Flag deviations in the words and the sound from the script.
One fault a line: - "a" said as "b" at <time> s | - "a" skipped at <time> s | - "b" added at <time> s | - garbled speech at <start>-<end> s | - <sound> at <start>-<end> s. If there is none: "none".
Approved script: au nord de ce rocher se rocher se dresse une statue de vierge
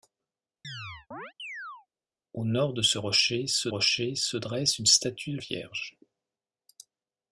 - chirp at 0.6-1.9 s